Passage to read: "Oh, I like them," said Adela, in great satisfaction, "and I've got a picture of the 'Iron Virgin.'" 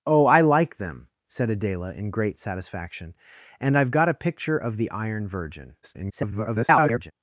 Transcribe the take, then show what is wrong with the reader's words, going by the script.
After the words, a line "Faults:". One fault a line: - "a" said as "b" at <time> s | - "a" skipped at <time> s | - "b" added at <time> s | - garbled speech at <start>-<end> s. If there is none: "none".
"Oh, I like them," said Adela, in great satisfaction, "and I've got a picture of the 'Iron Virgin.'" [garbled]
Faults:
- garbled speech at 5.8-7.1 s